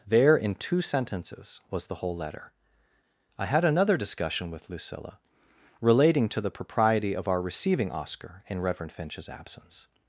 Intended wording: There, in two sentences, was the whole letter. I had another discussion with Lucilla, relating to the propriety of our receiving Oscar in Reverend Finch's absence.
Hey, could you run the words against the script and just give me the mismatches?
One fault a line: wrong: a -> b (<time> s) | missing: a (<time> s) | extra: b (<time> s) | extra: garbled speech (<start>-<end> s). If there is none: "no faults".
no faults